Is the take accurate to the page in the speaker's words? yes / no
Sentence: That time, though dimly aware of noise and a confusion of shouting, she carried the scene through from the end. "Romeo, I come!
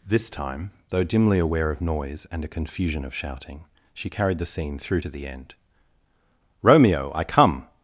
no